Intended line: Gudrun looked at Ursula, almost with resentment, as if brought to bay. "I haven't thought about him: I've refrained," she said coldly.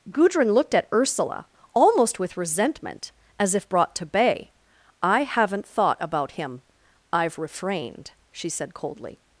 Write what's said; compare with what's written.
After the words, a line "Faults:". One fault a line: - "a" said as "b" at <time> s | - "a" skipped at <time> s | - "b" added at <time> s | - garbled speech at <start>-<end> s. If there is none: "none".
Gudrun looked at Ursula, almost with resentment, as if brought to bay. "I haven't thought about him: I've refrained," she said coldly.
Faults:
none